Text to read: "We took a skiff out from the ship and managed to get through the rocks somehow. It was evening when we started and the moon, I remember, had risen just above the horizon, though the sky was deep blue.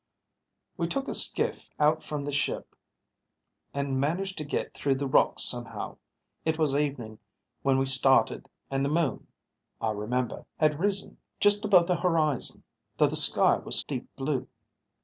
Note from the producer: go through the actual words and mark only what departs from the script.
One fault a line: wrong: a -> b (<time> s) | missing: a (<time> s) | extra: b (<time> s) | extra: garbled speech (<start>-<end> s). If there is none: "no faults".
no faults